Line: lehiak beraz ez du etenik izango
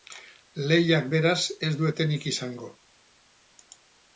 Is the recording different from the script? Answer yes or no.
no